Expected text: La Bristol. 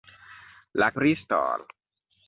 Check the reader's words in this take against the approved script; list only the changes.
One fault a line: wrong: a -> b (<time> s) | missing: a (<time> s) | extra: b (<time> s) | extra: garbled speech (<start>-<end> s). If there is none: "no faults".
no faults